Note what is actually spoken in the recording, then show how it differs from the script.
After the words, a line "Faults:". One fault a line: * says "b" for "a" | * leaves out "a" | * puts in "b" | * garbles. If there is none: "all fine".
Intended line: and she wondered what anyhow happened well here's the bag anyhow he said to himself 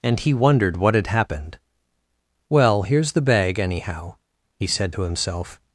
and he wondered what had happened well here's the bag anyhow he said to himself
Faults:
* says "he" for "she"
* says "had" for "anyhow"